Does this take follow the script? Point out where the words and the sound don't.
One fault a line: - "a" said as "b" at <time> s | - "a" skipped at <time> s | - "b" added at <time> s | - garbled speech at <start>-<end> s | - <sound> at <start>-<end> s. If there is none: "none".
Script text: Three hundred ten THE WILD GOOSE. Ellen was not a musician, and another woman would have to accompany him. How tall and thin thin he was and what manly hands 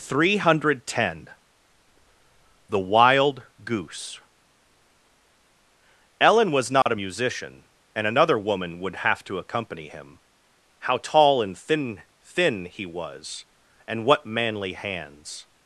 - dropout at 6.8-6.9 s